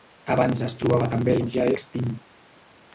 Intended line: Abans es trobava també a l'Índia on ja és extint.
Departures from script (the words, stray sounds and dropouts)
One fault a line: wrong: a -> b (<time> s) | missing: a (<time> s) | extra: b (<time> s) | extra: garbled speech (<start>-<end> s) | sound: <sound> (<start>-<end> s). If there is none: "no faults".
missing: l'Índia (1.4 s)
missing: és (1.7 s)